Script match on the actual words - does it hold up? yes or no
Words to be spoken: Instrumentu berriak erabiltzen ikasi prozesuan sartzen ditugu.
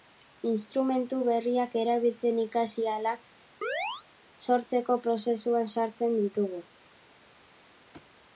no